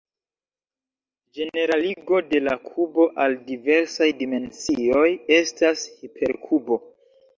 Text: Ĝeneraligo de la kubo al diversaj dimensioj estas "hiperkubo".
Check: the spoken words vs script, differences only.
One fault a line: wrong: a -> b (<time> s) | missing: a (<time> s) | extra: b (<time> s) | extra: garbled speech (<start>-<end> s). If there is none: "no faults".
no faults